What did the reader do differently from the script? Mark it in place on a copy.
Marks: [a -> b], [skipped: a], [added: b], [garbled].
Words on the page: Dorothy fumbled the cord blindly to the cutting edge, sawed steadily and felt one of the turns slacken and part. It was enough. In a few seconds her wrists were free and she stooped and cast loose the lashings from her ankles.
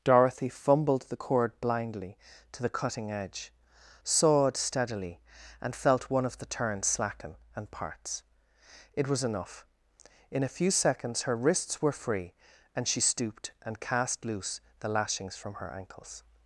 Dorothy fumbled the cord blindly to the cutting edge, sawed steadily and felt one of the turns slacken and [part. -> parts] It was enough. In a few seconds her wrists were free and she stooped and cast loose the lashings from her ankles.